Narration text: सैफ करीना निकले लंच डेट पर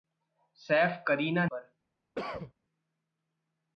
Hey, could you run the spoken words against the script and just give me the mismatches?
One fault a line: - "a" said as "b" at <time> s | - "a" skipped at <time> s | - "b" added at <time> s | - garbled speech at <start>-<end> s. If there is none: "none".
- "निकले लंच डेट" skipped at 1.4 s